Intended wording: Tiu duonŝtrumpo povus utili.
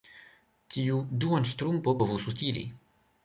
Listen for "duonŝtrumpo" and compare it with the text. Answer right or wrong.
right